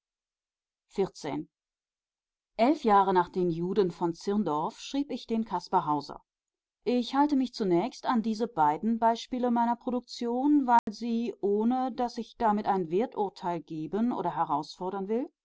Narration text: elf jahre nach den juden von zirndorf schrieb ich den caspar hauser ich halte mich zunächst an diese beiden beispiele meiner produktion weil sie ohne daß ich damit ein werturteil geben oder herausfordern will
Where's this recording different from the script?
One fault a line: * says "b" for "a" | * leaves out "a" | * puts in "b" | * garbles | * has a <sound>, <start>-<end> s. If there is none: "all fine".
* has a dropout, 10.8-10.9 s